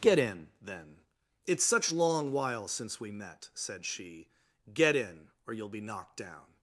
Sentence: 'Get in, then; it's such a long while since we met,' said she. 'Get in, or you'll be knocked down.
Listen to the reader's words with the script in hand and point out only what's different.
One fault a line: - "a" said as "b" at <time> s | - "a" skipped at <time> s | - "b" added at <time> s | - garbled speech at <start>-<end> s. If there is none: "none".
- "a" skipped at 1.9 s